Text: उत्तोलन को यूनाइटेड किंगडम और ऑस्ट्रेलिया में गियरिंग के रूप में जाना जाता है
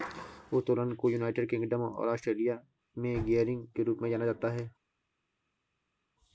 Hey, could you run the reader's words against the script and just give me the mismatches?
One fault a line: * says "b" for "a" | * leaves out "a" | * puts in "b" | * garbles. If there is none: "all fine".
all fine